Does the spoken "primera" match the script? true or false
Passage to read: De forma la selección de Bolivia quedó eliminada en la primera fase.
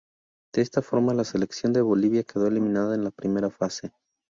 true